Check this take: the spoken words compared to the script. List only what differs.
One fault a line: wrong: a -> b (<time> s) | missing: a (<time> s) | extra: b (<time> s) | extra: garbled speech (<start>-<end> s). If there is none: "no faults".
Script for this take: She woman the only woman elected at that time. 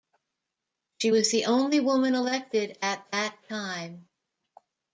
wrong: woman -> was (1.1 s)